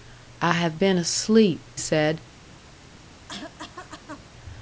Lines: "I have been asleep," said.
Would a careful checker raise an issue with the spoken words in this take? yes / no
no